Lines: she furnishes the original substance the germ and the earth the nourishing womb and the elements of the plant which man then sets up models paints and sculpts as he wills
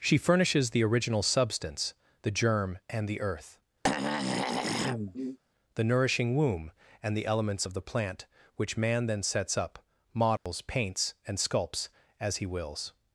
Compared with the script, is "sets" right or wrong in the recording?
right